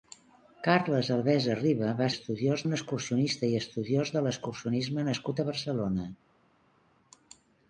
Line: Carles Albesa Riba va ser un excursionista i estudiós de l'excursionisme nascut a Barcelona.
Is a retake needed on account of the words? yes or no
yes